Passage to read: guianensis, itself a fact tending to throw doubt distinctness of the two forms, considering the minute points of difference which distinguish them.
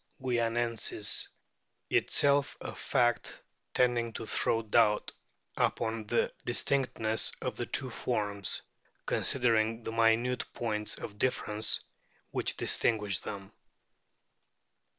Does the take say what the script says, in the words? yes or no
no